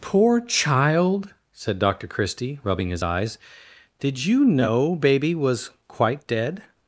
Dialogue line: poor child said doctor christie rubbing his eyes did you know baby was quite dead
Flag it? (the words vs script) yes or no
no